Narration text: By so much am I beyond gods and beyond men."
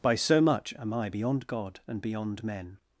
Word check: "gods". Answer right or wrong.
wrong